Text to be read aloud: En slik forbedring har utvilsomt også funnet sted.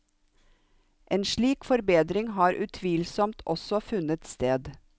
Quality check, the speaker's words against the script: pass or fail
pass